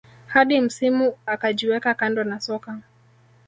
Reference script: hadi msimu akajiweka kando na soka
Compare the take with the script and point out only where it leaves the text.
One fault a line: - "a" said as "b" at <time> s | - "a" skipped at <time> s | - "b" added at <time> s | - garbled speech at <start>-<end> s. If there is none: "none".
none